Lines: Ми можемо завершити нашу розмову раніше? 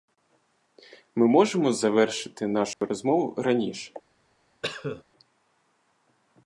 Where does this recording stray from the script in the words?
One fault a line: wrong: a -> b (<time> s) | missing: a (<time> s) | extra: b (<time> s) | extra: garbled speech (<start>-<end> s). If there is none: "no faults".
no faults